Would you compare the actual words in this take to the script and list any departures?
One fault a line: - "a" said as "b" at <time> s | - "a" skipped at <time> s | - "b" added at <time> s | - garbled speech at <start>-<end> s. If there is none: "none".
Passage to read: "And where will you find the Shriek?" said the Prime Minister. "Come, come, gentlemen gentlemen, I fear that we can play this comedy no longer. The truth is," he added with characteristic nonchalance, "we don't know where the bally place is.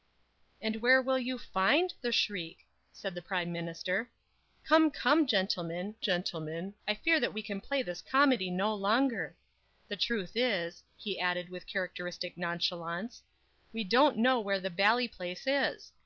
none